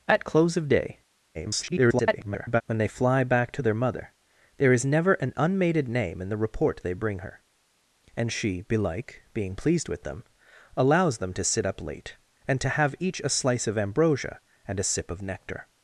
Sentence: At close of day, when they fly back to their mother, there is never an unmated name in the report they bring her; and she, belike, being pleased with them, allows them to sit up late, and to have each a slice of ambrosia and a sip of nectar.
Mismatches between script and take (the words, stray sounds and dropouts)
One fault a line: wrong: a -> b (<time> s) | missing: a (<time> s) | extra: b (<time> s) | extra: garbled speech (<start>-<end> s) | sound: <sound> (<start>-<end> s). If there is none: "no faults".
extra: garbled speech (1.3-2.6 s)